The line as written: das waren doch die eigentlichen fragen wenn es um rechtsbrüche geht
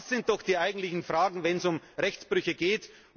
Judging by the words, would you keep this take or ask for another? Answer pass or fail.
fail